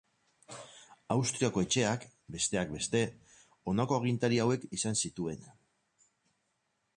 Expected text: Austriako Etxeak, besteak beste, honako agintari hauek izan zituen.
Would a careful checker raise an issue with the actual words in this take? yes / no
no